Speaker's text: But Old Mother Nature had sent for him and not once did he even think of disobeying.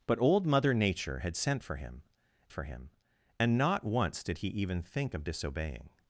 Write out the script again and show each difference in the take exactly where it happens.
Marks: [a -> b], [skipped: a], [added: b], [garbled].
But Old Mother Nature had sent for him [added: for him] and not once did he even think of disobeying.